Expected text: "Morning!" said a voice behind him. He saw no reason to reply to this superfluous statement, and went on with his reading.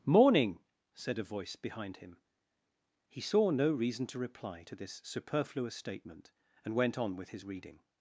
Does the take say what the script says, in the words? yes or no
yes